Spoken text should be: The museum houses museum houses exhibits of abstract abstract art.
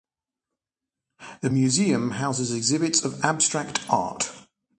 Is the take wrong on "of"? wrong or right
right